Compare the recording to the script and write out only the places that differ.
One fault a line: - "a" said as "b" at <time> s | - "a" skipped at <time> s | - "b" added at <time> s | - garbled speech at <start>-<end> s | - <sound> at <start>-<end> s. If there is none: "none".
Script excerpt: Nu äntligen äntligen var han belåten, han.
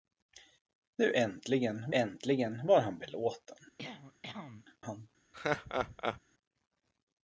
- cough at 3.8-4.7 s
- laugh at 5.3-6.2 s